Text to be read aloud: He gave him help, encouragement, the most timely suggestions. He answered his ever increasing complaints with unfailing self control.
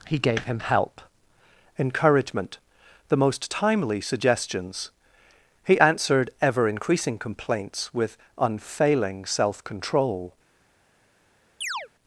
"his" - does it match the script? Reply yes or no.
no